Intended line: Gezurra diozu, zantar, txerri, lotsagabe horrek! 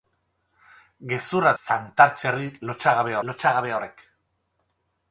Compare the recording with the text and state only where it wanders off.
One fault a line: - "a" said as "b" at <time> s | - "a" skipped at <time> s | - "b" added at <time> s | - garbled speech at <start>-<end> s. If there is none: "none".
- "diozu" skipped at 1.5 s
- "lotsagabe" added at 3.3 s